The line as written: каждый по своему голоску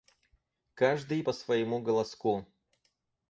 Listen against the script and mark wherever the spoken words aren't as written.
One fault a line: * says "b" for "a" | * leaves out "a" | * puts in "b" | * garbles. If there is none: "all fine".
all fine